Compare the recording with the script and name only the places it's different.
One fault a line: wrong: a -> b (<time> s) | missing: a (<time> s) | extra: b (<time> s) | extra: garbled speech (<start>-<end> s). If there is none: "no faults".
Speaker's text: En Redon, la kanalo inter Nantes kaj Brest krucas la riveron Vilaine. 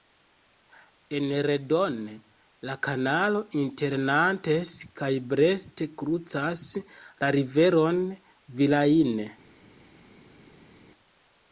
no faults